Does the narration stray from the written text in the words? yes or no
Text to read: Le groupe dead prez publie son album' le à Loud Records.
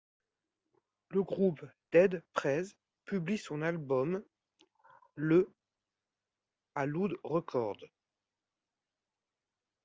no